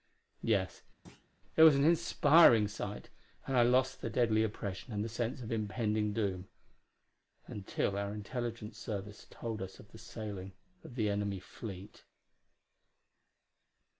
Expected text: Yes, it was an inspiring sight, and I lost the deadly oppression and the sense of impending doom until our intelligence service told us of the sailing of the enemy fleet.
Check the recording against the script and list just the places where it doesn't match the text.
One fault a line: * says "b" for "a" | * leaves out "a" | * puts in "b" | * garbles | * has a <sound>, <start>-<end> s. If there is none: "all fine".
* has a thud, 1.1-1.3 s